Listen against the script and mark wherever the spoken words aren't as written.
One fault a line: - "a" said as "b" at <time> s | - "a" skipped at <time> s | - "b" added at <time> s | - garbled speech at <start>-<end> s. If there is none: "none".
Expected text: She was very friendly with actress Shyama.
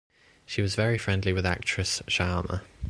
none